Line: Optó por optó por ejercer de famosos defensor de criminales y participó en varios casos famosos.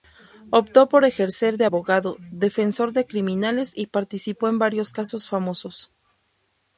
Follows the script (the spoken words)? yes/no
no